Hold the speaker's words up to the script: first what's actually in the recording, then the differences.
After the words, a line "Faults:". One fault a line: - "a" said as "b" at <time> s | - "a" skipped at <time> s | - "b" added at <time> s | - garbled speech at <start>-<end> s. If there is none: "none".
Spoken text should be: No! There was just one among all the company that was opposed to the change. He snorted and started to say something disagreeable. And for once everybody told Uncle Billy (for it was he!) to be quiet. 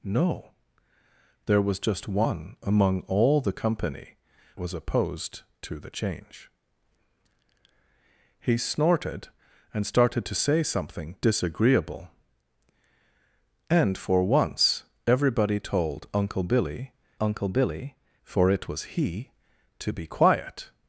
No! There was just one among all the company was opposed to the change. He snorted and started to say something disagreeable. And for once everybody told Uncle Billy Uncle Billy (for it was he!) to be quiet.
Faults:
- "that" skipped at 4.2 s
- "Uncle Billy" added at 17.2 s